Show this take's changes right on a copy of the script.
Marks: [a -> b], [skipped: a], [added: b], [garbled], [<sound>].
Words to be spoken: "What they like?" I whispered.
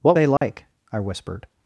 "What they like?" [dropout] I whispered.